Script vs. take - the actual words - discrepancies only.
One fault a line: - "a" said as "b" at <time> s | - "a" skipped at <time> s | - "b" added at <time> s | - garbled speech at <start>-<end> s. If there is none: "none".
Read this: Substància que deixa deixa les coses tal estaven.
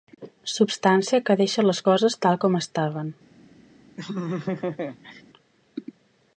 - "deixa" skipped at 1.6 s
- "com" added at 2.4 s